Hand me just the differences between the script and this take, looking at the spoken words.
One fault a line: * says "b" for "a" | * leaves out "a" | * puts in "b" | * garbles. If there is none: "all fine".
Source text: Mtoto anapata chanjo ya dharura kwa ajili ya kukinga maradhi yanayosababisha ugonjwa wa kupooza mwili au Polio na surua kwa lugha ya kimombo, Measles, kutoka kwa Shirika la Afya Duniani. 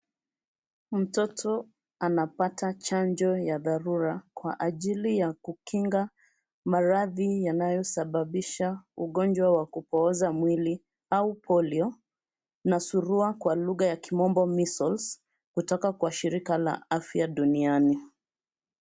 all fine